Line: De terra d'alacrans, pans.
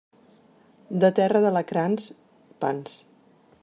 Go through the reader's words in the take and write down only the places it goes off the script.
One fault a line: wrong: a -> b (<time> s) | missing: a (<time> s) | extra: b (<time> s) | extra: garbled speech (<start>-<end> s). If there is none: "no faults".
no faults